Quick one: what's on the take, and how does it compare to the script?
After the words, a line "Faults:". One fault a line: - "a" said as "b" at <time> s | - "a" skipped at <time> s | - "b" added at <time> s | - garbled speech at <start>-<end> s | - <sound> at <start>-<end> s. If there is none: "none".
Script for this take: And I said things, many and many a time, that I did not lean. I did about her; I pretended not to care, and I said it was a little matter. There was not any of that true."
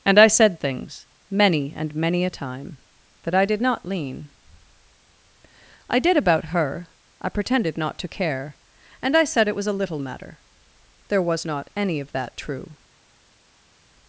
And I said things, many and many a time, that I did not lean. I did about her; I pretended not to care, and I said it was a little matter. There was not any of that true."
Faults:
none